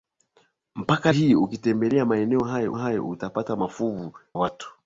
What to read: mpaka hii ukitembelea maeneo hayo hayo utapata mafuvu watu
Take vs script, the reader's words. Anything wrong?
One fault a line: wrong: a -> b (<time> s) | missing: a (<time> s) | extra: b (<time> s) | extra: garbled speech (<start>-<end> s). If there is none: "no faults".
no faults